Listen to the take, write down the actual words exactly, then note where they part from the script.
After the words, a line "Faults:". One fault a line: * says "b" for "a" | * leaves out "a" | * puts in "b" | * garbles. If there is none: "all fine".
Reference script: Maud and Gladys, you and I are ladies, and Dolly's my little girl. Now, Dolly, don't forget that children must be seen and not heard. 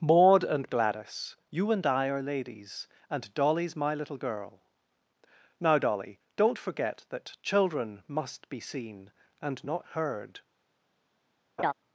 Maud and Gladys, you and I are ladies, and Dolly's my little girl. Now, Dolly, don't forget that children must be seen and not heard.
Faults:
all fine